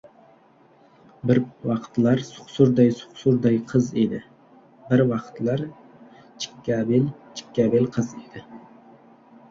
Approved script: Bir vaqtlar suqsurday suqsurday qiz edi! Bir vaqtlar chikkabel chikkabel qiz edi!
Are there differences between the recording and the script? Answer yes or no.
no